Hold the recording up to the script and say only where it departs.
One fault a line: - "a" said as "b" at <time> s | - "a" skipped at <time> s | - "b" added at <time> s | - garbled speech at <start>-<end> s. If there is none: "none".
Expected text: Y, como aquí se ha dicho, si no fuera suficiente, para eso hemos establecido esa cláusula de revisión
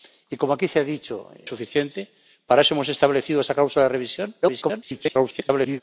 - "si no fuera" skipped at 1.3 s
- garbled speech at 4.4-5.8 s